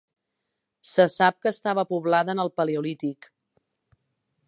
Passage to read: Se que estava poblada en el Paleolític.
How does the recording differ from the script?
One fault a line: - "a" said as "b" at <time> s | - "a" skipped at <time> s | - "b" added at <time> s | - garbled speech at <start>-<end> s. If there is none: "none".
- "sap" added at 1.2 s